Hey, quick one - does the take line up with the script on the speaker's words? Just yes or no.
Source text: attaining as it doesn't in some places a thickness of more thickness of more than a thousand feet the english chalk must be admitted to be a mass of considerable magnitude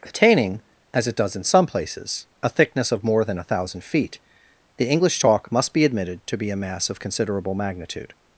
no